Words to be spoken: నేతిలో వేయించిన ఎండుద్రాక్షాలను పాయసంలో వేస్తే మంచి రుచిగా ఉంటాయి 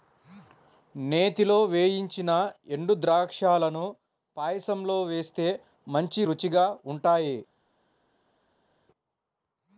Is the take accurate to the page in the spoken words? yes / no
yes